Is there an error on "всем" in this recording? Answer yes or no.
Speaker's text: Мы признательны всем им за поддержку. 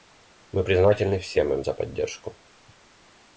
no